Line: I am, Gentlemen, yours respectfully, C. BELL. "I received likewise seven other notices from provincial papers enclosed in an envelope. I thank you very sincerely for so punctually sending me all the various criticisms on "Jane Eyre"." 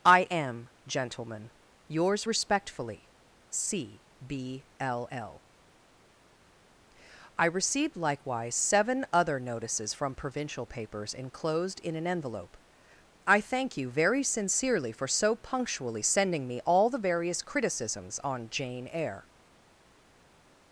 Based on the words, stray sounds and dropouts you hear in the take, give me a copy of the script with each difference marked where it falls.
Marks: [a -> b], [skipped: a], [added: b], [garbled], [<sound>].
I am, Gentlemen, yours respectfully, C. [BELL. -> B l l] "I received likewise seven other notices from provincial papers enclosed in an envelope. I thank you very sincerely for so punctually sending me all the various criticisms on "Jane Eyre"."